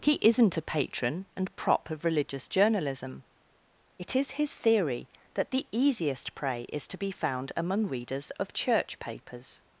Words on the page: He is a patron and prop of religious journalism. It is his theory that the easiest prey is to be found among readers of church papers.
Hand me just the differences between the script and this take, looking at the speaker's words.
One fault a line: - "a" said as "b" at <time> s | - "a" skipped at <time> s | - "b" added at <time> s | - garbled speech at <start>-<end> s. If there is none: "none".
- "is" said as "isn't" at 0.2 s